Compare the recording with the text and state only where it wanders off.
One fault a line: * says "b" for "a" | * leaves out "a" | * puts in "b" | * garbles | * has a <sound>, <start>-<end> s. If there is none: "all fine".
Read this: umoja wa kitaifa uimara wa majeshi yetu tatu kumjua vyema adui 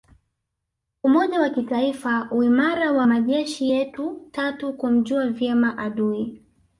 all fine